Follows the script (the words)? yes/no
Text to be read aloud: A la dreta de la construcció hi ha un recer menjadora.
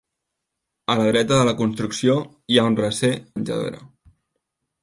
yes